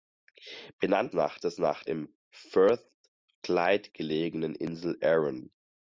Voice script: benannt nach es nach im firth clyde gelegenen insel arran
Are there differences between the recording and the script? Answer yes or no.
no